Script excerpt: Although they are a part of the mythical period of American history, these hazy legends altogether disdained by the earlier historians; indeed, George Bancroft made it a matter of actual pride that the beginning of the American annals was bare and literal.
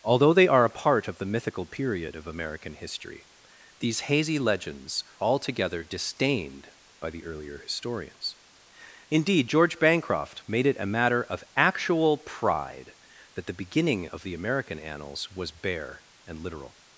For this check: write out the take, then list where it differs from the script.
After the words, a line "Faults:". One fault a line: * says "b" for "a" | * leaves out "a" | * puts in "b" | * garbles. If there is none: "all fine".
Although they are a part of the mythical period of American history, these hazy legends altogether disdained by the earlier historians; indeed, George Bancroft made it a matter of actual pride that the beginning of the American annals was bare and literal.
Faults:
all fine